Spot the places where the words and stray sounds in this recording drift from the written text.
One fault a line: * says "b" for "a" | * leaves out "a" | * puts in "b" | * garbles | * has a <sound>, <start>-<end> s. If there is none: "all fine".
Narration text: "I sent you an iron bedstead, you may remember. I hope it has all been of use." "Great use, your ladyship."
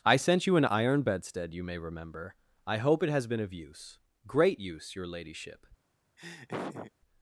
* leaves out "all"
* has a laugh, 6.2-6.9 s